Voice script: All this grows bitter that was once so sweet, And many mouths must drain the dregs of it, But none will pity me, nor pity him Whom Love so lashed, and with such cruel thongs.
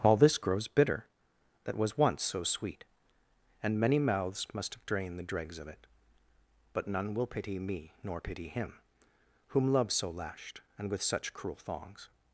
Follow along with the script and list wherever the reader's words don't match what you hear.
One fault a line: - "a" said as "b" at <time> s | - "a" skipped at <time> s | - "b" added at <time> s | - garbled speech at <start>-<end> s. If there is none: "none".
- "drain" said as "have drained" at 4.7 s